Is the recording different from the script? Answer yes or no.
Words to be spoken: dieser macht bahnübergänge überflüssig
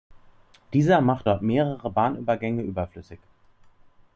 yes